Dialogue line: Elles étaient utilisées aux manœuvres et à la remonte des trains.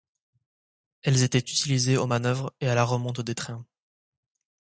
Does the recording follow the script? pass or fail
pass